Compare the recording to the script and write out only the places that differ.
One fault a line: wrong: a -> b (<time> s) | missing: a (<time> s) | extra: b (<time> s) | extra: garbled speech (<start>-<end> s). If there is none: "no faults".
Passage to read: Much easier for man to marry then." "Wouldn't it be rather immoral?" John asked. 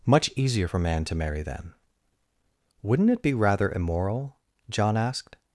no faults